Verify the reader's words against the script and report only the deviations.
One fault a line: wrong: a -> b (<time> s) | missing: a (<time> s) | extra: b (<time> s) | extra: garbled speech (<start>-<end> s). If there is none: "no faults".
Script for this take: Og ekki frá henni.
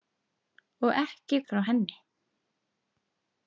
no faults